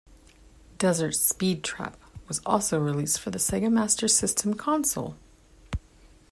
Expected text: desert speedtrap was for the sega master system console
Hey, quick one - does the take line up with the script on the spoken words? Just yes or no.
no